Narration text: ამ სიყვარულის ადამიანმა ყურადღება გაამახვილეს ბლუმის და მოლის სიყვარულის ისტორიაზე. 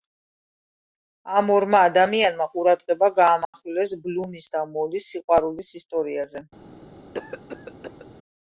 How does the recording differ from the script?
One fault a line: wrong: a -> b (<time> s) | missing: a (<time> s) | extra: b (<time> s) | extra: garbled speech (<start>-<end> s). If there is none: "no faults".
wrong: სიყვარულის -> ორმა (1.6 s)